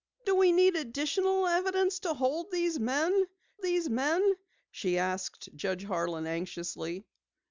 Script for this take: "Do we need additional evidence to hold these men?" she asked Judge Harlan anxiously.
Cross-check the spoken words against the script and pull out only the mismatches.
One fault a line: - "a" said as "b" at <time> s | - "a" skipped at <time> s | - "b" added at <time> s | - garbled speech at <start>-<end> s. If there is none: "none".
- "these men" added at 3.6 s